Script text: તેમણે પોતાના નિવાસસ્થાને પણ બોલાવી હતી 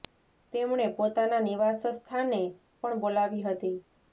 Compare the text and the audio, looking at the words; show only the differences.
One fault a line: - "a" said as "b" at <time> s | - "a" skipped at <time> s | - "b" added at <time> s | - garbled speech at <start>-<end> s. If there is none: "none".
none